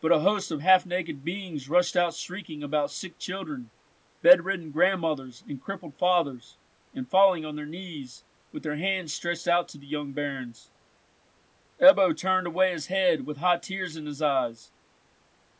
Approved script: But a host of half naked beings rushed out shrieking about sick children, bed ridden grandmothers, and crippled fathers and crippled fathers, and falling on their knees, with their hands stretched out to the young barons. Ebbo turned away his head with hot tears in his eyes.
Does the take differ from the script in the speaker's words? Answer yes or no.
yes